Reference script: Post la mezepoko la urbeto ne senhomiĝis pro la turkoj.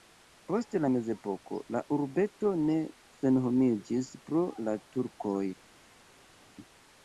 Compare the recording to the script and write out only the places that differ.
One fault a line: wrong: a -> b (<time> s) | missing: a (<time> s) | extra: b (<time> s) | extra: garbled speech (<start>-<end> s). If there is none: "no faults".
no faults